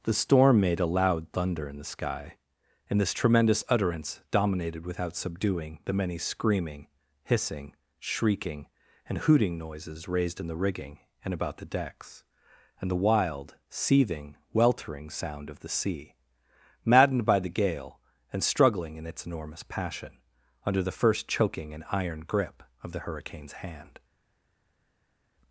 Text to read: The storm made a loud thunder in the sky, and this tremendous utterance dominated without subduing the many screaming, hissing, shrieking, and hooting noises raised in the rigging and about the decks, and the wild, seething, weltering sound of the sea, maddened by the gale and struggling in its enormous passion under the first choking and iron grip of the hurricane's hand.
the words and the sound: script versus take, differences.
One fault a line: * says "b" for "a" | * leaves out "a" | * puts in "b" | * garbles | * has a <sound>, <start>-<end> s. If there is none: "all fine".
all fine